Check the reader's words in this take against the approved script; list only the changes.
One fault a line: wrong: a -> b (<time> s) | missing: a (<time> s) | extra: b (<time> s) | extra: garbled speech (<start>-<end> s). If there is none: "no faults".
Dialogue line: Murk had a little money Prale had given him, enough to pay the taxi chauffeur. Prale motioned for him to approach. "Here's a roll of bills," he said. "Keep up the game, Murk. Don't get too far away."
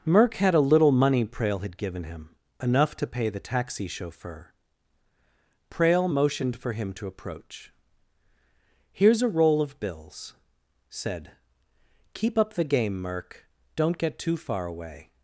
missing: he (10.4 s)